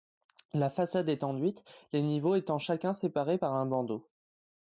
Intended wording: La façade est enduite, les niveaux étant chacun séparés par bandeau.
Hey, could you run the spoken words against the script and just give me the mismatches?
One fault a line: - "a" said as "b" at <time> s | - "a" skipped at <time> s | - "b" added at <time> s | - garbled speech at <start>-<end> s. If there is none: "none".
- "un" added at 3.5 s